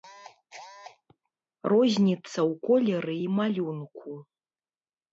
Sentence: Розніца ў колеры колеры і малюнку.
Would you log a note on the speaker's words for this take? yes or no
yes